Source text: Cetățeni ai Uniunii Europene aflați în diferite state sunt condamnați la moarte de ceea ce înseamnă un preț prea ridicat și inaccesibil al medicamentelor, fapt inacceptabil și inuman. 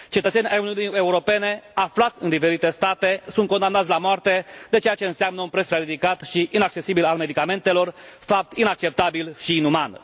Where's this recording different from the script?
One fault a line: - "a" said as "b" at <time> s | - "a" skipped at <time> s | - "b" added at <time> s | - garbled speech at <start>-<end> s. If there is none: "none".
none